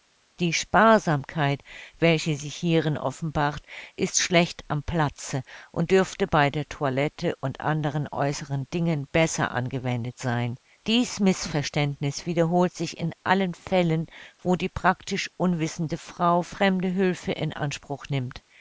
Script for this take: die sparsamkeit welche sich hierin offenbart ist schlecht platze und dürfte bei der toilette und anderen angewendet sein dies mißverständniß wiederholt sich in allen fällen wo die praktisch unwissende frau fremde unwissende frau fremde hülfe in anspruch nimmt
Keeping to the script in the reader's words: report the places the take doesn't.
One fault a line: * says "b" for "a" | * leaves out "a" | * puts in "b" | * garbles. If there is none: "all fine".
* puts in "am"
* puts in "äußeren dingen besser"
* leaves out "unwissende frau fremde"